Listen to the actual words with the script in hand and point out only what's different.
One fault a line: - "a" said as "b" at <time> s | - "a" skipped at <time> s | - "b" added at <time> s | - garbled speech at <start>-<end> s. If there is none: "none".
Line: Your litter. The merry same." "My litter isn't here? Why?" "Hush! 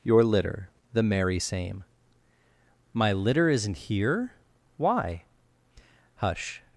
none